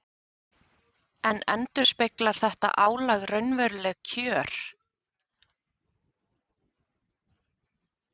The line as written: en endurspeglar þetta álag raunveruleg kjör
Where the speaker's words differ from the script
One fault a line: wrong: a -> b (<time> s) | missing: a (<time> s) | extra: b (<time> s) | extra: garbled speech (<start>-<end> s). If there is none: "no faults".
no faults